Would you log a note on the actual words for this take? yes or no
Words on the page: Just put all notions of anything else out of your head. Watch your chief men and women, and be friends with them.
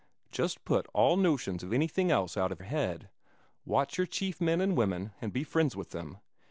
yes